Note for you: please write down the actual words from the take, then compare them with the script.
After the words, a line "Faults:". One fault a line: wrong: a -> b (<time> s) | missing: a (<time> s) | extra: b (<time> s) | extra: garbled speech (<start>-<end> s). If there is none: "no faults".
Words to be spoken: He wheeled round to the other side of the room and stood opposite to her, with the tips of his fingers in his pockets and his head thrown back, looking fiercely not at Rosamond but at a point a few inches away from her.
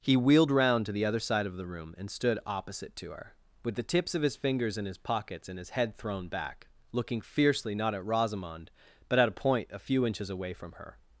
He wheeled round to the other side of the room and stood opposite to her, with the tips of his fingers in his pockets and his head thrown back, looking fiercely not at Rosamond but at a point a few inches away from her.
Faults:
no faults